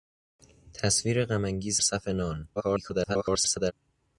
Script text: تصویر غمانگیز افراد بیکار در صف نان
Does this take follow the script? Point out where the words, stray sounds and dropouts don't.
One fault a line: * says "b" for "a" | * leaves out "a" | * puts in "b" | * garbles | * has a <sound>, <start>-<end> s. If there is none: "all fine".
* leaves out "افراد بیکار در"
* garbles